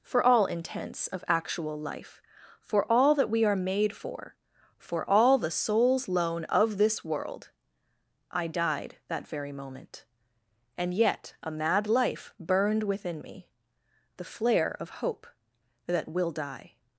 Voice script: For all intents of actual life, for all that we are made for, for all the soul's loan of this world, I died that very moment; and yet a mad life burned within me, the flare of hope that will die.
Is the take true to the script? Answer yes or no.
yes